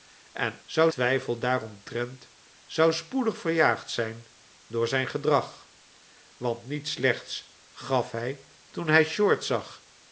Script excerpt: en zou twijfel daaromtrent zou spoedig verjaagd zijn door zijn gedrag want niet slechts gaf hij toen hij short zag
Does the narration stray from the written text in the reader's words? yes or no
no